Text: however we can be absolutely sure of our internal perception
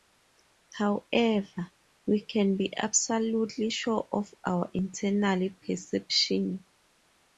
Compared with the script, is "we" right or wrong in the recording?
right